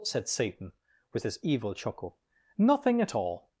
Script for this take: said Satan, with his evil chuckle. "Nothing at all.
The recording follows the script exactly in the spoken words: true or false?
true